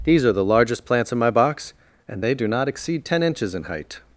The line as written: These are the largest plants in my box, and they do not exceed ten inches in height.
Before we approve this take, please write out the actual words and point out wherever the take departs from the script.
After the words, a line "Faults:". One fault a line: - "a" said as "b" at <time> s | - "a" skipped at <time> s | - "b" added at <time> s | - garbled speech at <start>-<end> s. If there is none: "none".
These are the largest plants in my box, and they do not exceed ten inches in height.
Faults:
none